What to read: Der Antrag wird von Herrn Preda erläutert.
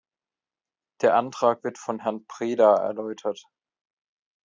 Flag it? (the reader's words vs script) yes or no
no